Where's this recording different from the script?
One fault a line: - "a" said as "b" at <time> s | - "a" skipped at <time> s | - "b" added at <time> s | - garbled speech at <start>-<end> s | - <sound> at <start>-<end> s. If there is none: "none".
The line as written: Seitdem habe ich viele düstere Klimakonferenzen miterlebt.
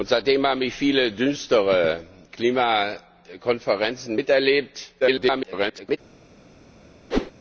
- garbled speech at 5.0-6.0 s
- whoosh at 7.1-7.3 s